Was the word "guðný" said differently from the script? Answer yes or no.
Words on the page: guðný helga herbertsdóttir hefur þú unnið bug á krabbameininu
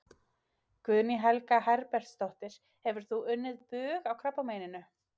no